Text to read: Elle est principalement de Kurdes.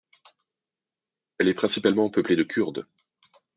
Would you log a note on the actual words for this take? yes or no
yes